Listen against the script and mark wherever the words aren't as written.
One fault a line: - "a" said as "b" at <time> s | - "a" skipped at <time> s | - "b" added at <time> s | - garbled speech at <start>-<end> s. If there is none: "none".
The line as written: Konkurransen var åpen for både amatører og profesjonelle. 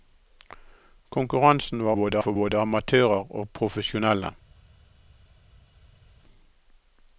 - "åpen" said as "både" at 1.9 s